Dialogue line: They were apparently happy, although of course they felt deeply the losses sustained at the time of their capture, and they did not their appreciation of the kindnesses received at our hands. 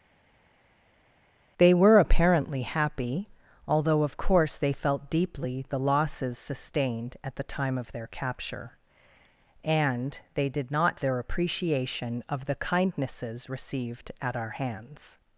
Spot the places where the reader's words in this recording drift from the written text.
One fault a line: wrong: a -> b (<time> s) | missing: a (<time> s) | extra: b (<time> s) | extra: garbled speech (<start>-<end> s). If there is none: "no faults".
no faults